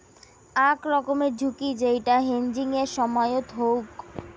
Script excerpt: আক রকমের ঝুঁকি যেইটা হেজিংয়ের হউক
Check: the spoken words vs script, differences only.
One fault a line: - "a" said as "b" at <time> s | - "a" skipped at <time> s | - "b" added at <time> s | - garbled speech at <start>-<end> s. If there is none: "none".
- "সময়ত" added at 3.0 s